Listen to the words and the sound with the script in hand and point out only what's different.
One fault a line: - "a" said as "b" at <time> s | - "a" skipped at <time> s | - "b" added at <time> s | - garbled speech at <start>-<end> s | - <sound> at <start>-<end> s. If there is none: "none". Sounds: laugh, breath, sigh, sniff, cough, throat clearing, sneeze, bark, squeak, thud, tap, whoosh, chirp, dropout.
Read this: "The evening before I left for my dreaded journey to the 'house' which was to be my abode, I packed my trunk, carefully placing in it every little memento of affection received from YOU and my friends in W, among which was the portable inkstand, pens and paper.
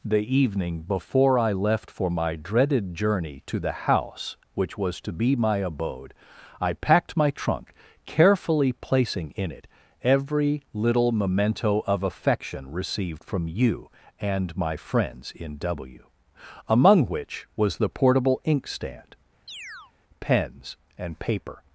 - chirp at 19.5-19.9 s